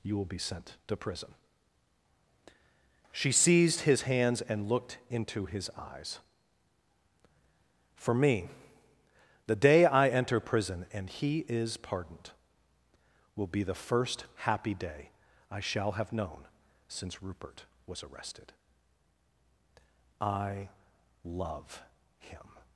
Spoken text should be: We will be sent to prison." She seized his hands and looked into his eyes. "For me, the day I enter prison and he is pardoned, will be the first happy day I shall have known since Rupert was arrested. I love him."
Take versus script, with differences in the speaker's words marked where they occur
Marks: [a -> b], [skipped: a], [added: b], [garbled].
[We -> You] will be sent to prison." She seized his hands and looked into his eyes. "For me, the day I enter prison and he is pardoned, will be the first happy day I shall have known since Rupert was arrested. I love him."